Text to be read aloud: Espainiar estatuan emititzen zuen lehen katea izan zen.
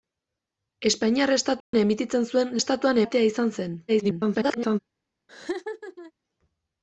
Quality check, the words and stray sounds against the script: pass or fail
fail